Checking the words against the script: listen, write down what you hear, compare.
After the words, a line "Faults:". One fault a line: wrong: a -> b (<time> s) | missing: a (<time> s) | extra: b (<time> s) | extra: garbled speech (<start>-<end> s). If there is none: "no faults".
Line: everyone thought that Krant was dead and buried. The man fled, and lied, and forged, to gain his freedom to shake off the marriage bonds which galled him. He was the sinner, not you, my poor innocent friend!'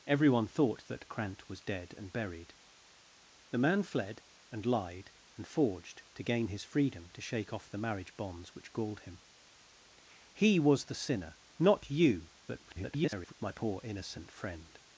everyone thought that Krant was dead and buried. The man fled, and lied, and forged, to gain his freedom to shake off the marriage bonds which galled him. He was the sinner, not you, [garbled] my poor innocent friend!'
Faults:
extra: garbled speech (12.5-13.3 s)